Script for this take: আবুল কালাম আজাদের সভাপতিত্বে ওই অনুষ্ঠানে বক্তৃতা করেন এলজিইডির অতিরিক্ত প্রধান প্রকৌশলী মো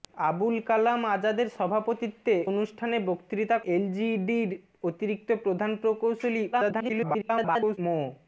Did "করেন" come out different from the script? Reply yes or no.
yes